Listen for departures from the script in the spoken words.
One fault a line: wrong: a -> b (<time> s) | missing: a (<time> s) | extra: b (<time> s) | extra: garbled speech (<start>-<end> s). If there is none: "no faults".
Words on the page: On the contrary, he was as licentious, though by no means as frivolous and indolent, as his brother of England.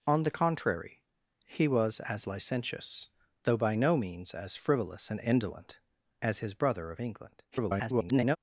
extra: garbled speech (7.5-8.4 s)